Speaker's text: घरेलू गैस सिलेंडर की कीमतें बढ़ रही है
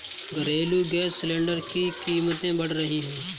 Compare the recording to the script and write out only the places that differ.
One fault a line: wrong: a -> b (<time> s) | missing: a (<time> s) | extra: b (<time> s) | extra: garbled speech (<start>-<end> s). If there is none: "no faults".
no faults